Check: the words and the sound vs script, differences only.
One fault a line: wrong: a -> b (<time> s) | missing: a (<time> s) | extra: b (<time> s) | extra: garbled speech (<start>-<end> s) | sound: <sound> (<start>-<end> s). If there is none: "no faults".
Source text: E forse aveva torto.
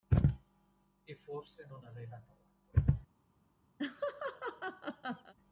extra: non (1.7 s)
sound: laugh (3.8-5.3 s)